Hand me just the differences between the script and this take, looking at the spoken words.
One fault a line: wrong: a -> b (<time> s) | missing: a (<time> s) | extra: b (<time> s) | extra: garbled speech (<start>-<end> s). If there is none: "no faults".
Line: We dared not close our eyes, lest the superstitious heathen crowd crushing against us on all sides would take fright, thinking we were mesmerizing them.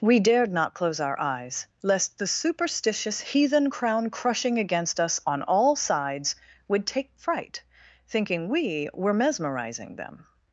wrong: crowd -> crown (3.7 s)